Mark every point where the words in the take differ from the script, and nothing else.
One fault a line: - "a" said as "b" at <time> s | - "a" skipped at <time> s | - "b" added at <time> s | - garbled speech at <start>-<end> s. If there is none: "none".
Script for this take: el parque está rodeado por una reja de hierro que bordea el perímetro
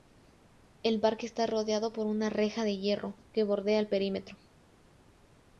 none